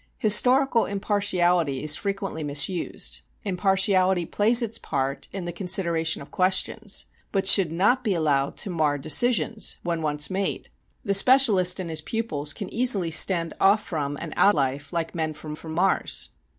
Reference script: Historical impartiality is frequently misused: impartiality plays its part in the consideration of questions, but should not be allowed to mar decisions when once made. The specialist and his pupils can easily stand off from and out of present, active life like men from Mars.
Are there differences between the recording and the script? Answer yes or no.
yes